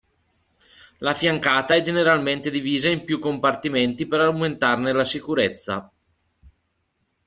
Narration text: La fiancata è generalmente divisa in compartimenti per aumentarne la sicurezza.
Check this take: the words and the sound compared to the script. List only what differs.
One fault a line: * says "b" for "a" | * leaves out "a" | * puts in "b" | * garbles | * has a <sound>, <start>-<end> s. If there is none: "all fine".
* puts in "più"